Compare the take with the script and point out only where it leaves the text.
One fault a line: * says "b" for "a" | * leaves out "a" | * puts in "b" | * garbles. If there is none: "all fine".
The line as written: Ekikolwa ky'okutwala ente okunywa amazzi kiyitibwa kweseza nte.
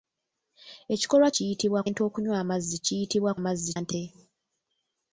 * says "kiyitibwa" for "ky'okutwala"
* says "amazzi" for "kweseza"